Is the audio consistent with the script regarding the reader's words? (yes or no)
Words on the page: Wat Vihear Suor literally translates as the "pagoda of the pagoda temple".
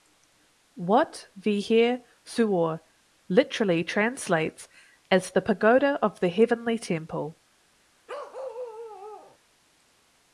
no